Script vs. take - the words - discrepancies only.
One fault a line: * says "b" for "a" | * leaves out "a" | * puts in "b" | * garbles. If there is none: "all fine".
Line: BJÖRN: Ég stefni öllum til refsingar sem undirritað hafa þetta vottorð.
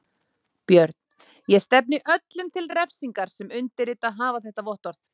all fine